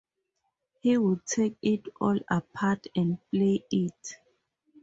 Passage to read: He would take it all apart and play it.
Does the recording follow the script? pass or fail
pass